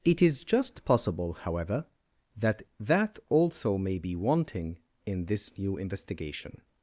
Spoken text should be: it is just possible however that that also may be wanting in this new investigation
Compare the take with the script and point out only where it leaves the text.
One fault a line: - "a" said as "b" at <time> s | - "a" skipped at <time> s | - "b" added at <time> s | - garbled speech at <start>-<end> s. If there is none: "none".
none